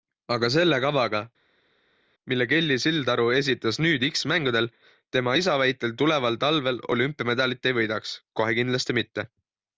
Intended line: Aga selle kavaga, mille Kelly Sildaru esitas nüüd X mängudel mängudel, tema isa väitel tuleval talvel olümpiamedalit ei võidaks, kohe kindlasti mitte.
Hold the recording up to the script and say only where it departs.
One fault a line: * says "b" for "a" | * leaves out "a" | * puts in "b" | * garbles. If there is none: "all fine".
* leaves out "mängudel"